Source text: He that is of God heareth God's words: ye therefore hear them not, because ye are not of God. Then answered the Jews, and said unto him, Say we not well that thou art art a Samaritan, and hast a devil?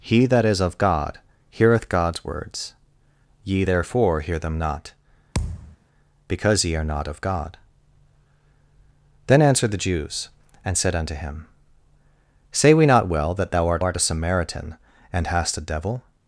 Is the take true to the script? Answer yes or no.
yes